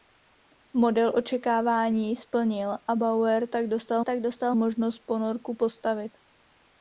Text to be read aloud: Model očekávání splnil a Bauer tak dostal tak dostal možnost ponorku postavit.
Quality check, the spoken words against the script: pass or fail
pass